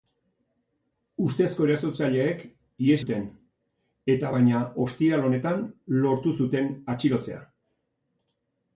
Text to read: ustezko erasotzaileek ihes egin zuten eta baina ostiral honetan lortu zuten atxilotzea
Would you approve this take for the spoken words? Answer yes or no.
no